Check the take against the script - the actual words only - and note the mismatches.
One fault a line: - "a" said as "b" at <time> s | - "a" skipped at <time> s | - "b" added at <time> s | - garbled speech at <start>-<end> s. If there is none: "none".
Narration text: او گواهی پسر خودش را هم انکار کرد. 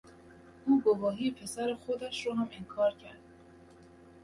none